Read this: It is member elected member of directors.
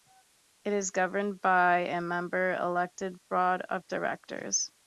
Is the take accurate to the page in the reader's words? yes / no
no